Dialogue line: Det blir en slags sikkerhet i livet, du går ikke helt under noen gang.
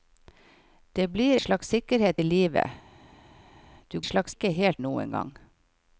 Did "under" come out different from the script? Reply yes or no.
yes